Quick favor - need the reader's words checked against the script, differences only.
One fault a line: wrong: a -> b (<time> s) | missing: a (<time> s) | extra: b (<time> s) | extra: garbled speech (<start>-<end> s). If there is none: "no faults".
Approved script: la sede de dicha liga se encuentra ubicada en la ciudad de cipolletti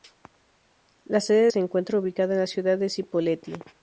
missing: de dicha liga (1.5 s)